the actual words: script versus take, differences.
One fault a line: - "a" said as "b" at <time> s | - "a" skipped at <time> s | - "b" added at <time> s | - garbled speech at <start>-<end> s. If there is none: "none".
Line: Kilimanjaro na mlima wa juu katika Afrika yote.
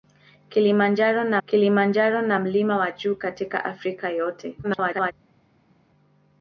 - "kilimanjaro na" added at 1.5 s
- garbled speech at 4.6-5.1 s